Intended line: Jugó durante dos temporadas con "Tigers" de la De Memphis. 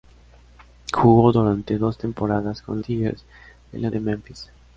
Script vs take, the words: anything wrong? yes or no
no